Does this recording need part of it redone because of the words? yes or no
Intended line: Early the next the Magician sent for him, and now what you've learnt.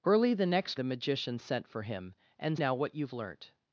no